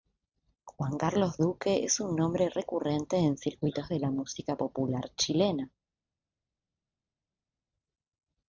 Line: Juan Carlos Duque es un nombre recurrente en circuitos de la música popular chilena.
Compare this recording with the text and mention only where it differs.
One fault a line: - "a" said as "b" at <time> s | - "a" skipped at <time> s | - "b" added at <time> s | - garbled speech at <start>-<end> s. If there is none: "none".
none